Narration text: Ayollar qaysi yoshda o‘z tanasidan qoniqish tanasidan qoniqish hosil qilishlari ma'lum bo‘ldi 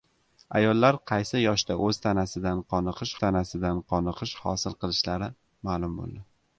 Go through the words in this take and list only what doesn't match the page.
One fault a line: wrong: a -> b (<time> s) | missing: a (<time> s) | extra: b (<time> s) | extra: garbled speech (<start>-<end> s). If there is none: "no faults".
no faults